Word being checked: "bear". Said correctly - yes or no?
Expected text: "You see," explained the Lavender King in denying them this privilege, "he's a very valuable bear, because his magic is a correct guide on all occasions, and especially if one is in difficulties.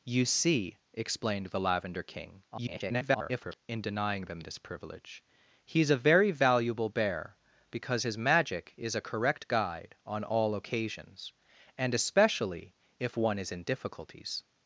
yes